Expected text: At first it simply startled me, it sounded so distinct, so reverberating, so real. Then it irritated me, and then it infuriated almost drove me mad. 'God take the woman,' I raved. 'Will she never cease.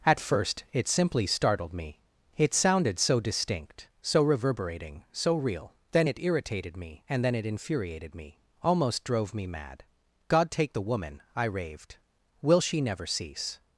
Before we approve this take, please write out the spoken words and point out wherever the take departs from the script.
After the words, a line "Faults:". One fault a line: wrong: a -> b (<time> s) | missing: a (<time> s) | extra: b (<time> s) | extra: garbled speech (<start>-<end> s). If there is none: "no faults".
At first it simply startled me, it sounded so distinct, so reverberating, so real. Then it irritated me, and then it infuriated me, almost drove me mad. 'God take the woman,' I raved. 'Will she never cease.
Faults:
extra: me (8.1 s)